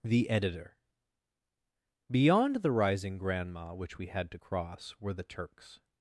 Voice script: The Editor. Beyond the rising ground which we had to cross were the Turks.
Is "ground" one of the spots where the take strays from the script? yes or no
yes